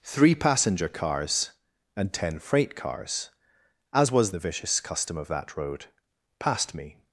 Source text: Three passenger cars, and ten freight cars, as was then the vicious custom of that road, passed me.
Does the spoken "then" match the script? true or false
false